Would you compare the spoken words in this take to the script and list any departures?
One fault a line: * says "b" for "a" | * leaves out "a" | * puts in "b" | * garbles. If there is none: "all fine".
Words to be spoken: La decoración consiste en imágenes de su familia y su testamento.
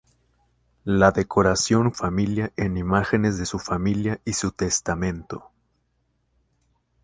* says "familia" for "consiste"